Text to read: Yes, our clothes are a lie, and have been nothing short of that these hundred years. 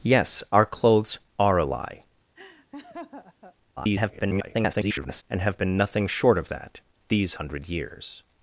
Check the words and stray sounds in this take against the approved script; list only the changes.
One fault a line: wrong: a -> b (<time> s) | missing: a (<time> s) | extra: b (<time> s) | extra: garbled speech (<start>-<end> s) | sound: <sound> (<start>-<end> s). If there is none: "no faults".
sound: laugh (2.4-3.6 s)
extra: garbled speech (3.8-5.2 s)